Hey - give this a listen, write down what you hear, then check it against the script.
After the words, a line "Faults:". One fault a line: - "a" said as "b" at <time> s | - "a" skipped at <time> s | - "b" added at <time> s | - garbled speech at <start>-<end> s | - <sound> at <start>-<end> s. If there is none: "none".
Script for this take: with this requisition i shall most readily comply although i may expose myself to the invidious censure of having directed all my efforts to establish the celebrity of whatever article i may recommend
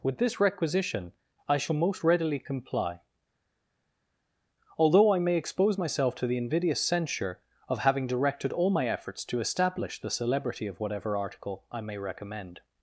with this requisition i shall most readily comply although i may expose myself to the invidious censure of having directed all my efforts to establish the celebrity of whatever article i may recommend
Faults:
none